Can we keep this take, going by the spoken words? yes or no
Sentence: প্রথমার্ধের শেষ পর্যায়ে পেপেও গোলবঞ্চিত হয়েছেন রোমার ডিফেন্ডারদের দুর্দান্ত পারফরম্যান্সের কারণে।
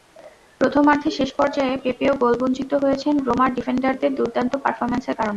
yes